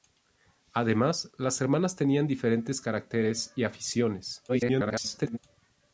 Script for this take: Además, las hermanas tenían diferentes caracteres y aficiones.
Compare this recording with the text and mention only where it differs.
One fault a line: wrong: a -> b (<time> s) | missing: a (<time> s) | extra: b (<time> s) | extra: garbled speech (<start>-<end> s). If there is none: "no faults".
extra: garbled speech (4.5-5.4 s)